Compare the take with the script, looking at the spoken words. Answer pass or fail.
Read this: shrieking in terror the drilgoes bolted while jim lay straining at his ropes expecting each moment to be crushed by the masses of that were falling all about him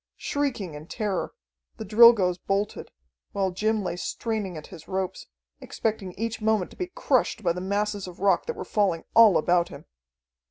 fail